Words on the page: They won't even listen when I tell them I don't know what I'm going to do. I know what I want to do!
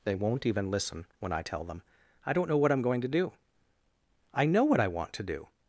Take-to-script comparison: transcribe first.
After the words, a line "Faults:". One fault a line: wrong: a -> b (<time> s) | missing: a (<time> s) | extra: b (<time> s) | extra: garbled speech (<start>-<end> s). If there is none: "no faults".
They won't even listen when I tell them I don't know what I'm going to do. I know what I want to do!
Faults:
no faults